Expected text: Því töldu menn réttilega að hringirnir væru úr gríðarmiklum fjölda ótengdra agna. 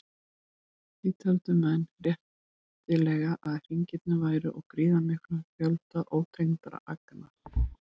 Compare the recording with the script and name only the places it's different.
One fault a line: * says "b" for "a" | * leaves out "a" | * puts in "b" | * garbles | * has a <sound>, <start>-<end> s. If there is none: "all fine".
* has a thud, 7.4-7.8 s